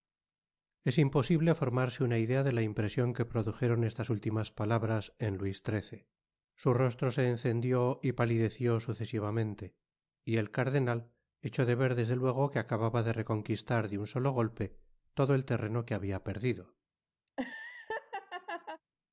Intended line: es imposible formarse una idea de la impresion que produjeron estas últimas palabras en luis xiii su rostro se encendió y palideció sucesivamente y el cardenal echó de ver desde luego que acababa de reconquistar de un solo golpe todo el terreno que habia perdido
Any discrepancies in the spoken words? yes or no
no